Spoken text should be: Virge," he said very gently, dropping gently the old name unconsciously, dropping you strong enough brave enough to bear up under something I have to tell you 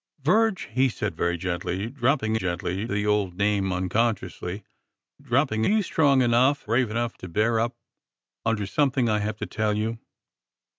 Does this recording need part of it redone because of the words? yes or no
no